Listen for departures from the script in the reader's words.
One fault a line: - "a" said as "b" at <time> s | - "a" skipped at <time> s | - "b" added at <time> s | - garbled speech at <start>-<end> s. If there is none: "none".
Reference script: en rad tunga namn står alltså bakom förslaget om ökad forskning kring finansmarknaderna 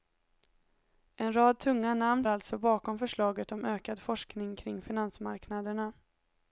- "står" skipped at 2.2 s